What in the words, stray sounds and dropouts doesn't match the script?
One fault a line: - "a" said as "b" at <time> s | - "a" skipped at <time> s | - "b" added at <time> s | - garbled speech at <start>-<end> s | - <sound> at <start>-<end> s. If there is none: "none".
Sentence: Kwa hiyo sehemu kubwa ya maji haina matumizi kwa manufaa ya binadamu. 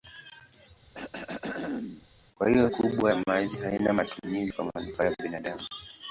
- throat clearing at 0.9-2.1 s
- "sehemu" skipped at 2.7 s